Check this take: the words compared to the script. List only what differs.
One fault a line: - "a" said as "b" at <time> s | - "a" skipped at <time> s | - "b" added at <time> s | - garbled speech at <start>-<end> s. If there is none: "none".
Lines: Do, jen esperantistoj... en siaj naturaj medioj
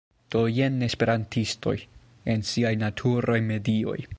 none